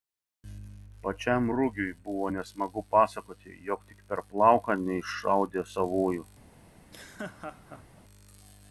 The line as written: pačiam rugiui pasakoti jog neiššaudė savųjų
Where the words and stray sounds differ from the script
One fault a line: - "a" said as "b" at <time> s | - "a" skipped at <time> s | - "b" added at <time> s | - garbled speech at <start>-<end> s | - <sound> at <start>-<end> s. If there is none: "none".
- "buvo nesmagu" added at 2.0 s
- "tik per plauką" added at 3.9 s
- laugh at 6.8-8.0 s